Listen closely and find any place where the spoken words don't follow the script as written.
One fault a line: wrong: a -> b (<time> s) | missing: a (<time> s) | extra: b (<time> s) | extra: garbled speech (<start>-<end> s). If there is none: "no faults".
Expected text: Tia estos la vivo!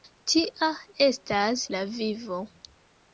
wrong: estos -> estas (1.1 s)